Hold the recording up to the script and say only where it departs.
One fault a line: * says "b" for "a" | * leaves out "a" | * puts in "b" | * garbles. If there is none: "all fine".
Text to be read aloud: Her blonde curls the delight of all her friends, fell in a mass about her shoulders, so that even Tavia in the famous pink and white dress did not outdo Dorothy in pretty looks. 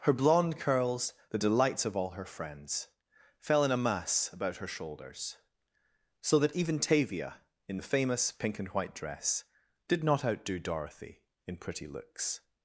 * says "delights" for "delight"